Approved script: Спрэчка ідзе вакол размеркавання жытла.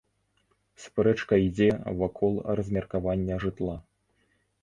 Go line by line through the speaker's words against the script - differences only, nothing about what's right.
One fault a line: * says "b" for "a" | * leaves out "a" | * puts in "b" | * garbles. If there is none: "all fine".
all fine